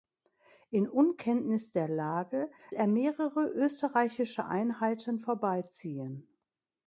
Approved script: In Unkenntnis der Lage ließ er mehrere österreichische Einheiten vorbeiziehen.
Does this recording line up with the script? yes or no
no